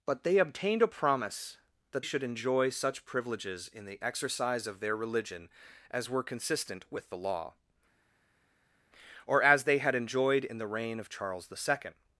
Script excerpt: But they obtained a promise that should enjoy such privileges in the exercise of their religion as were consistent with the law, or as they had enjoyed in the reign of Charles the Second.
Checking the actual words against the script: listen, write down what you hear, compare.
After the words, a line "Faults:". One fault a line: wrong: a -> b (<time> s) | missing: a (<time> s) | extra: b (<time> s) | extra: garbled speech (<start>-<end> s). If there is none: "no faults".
But they obtained a promise that should enjoy such privileges in the exercise of their religion as were consistent with the law, or as they had enjoyed in the reign of Charles the Second.
Faults:
no faults